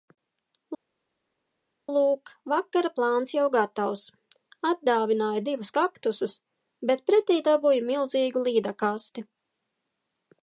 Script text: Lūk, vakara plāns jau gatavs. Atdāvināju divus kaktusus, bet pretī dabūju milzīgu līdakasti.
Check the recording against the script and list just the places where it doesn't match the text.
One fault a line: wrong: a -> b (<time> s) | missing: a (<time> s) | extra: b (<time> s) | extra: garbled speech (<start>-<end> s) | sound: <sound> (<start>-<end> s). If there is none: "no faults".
no faults